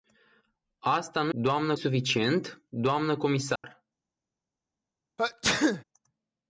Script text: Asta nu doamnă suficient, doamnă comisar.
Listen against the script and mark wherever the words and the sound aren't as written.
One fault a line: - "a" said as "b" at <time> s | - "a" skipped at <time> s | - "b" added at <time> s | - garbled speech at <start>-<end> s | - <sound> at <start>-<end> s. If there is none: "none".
- dropout at 3.6-3.6 s
- sneeze at 5.2-5.8 s